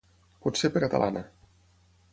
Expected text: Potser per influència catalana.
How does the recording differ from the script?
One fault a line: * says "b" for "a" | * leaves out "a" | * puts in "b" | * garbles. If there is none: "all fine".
* leaves out "influència"